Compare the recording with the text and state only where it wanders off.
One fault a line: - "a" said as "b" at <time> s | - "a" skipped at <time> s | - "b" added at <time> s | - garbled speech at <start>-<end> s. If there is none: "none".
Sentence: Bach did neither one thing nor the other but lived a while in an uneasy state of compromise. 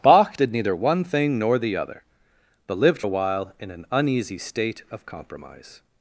none